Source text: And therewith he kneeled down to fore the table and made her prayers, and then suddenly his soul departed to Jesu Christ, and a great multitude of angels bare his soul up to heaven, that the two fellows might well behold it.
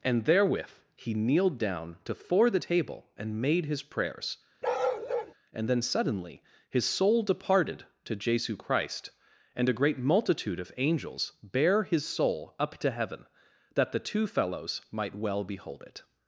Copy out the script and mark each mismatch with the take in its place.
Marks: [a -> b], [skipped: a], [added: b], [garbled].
And therewith he kneeled down to fore the table and made [her -> his] prayers, and then suddenly his soul departed to Jesu Christ, and a great multitude of angels bare his soul up to heaven, that the two fellows might well behold it.